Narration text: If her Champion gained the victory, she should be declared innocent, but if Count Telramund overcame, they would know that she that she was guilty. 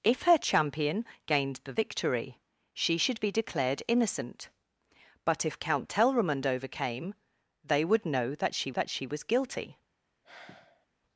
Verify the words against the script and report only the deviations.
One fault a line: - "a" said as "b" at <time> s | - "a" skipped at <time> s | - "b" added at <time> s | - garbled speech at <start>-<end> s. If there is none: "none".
none